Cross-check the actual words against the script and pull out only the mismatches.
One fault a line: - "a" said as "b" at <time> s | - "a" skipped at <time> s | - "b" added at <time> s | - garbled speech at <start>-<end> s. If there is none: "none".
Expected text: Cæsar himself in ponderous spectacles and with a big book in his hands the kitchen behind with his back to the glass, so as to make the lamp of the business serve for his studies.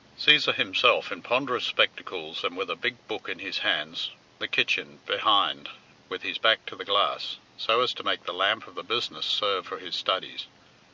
none